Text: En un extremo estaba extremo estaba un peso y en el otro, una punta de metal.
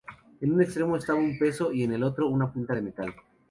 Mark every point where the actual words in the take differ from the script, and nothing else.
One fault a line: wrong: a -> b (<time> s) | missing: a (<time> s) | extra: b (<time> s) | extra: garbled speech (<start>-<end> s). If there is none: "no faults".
missing: extremo estaba (1.2 s)